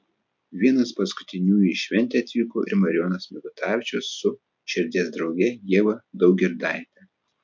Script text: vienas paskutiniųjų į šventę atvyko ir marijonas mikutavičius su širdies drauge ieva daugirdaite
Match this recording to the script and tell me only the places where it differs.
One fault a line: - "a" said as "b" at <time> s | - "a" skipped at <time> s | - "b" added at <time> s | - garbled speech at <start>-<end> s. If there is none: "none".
none